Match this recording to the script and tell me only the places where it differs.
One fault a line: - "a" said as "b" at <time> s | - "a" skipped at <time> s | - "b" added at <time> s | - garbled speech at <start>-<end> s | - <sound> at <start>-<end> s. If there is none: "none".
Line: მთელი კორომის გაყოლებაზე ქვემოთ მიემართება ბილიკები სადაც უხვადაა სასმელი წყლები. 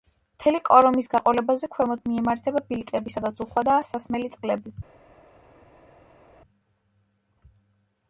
none